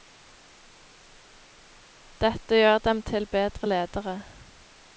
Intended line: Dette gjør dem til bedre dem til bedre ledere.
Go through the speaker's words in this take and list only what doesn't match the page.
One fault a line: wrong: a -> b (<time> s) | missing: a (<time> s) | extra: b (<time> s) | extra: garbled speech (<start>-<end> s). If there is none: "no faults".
missing: dem til bedre (3.7 s)